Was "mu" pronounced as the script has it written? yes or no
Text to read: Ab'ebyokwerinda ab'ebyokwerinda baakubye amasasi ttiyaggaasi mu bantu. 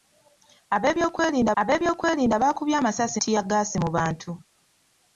yes